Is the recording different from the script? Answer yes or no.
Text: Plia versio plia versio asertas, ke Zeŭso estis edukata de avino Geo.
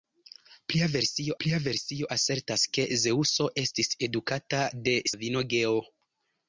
no